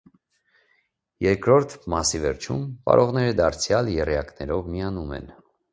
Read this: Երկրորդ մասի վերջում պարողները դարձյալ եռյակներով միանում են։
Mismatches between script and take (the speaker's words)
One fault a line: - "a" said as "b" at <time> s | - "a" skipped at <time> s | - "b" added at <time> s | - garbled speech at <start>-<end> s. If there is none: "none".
none